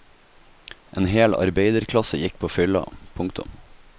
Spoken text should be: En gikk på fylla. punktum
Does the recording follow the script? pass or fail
fail